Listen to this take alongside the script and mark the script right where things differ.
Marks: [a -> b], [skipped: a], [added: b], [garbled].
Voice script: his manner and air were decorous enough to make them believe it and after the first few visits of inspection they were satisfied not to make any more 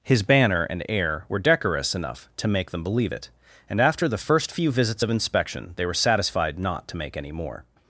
his [manner -> banner] and air were decorous enough to make them believe it and after the first few visits of inspection they were satisfied not to make any more